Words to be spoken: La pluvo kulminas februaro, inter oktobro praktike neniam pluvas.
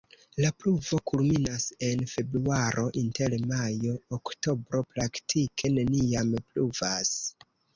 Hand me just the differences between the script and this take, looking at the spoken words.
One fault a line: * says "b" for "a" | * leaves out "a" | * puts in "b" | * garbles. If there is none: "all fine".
* puts in "en"
* puts in "majo"